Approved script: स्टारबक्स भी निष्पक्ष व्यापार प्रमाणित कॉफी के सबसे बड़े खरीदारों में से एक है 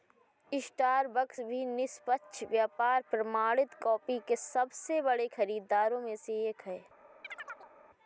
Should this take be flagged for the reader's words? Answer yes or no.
no